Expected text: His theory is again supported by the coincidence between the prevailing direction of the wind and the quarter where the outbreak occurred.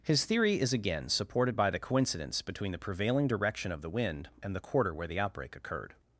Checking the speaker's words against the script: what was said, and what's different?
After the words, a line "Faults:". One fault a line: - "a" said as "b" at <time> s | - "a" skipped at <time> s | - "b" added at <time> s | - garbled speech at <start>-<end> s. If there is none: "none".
His theory is again supported by the coincidence between the prevailing direction of the wind and the quarter where the outbreak occurred.
Faults:
none